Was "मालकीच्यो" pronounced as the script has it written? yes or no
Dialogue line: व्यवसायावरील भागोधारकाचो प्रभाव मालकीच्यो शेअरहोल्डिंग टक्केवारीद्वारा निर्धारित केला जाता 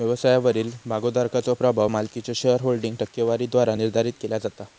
yes